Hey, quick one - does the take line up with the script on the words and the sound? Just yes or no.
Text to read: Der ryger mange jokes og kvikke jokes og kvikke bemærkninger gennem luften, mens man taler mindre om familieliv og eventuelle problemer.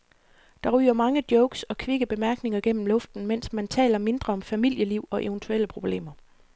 no